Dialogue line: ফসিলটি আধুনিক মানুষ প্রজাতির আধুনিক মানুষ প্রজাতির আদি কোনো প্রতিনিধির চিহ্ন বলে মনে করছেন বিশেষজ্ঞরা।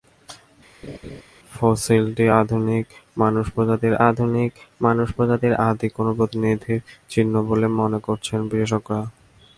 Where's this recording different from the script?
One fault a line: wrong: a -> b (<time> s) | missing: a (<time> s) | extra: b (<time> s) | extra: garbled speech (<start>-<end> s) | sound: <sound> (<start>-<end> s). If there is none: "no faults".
sound: laugh (0.8-1.2 s)